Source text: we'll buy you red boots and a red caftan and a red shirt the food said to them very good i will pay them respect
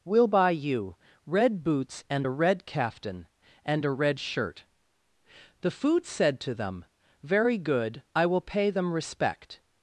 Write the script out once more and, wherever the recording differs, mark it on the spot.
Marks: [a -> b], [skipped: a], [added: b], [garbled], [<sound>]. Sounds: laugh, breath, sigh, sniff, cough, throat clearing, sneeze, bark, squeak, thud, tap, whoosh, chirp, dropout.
we'll buy you red boots and a red caftan and a red shirt the food said to them very good i will pay them respect